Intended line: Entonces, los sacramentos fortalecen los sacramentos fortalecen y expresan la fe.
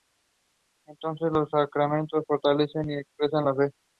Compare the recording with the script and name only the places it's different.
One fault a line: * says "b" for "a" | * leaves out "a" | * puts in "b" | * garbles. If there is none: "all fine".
* leaves out "los sacramentos fortalecen"